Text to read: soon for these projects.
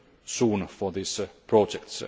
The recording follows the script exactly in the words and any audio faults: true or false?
true